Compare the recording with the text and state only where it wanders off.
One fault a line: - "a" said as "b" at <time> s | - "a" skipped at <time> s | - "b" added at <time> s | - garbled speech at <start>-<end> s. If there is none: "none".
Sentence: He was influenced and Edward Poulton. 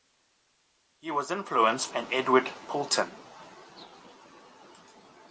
none